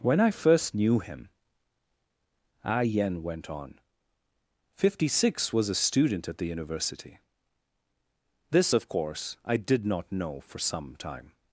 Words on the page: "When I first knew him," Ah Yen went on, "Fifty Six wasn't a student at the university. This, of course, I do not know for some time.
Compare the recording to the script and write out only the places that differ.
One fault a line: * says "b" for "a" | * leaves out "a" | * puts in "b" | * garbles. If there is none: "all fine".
* says "was" for "wasn't"
* says "did" for "do"